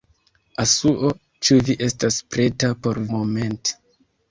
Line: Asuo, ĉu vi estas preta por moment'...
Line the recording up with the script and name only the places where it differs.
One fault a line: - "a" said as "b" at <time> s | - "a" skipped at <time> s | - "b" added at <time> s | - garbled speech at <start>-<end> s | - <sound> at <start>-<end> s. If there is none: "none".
none